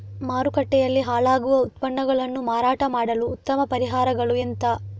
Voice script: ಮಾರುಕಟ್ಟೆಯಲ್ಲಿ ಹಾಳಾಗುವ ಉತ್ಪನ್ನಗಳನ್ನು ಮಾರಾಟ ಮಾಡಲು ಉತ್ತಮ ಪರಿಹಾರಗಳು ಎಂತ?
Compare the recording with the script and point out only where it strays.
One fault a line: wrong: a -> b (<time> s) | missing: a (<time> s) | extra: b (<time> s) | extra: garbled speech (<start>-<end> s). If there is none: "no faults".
no faults